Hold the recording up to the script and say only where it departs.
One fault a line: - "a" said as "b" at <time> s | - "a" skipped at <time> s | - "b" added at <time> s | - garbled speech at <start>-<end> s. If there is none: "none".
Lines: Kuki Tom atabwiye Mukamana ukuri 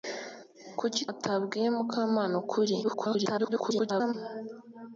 - "Tom" skipped at 1.0 s
- garbled speech at 2.8-4.1 s